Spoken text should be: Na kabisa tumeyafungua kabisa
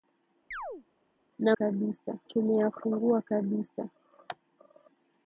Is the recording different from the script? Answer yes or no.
no